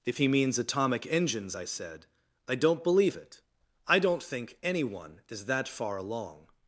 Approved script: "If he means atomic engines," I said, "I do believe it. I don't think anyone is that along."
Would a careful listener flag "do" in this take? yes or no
yes